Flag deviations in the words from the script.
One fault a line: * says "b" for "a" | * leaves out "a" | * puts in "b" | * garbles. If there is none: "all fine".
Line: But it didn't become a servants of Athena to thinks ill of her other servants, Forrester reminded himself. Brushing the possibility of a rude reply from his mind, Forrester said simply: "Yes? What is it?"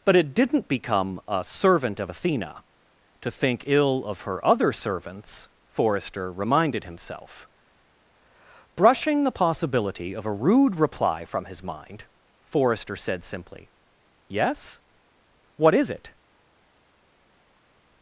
* says "servant" for "servants"
* says "think" for "thinks"